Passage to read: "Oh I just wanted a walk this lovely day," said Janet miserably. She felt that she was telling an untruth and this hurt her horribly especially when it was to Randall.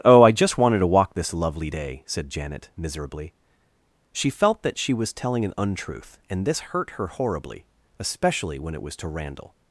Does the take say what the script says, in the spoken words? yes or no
no